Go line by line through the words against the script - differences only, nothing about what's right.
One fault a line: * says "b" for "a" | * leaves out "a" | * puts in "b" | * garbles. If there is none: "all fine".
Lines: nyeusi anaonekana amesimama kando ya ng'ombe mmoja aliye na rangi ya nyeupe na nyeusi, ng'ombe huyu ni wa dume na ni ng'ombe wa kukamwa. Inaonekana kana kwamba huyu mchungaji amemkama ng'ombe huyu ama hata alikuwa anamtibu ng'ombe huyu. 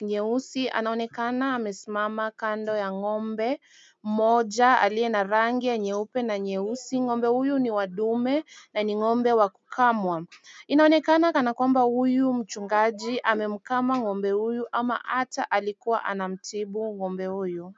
all fine